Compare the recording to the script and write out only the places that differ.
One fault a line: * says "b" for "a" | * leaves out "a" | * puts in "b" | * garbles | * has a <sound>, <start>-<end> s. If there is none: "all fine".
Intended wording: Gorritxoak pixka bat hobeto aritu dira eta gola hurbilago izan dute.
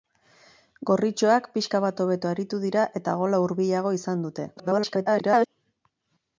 * garbles